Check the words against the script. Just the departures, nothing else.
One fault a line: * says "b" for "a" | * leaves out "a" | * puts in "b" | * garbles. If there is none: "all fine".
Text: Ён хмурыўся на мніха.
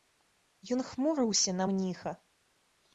all fine